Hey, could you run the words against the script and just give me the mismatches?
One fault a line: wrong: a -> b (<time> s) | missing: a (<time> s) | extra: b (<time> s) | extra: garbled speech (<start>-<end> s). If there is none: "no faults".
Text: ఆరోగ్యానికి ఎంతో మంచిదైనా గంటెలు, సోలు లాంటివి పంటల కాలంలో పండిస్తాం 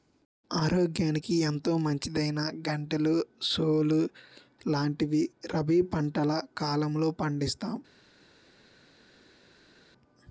extra: రబీ (5.5 s)